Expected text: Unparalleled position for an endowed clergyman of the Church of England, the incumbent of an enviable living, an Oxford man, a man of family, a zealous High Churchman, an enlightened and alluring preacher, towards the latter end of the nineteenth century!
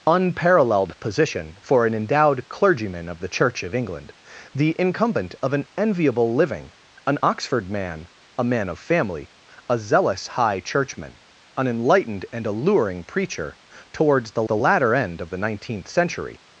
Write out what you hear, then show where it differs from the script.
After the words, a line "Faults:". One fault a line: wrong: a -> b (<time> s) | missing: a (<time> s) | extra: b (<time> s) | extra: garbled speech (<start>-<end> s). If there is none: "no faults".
Unparalleled position for an endowed clergyman of the Church of England, the incumbent of an enviable living, an Oxford man, a man of family, a zealous High Churchman, an enlightened and alluring preacher, towards the the latter end of the nineteenth century!
Faults:
extra: the (14.4 s)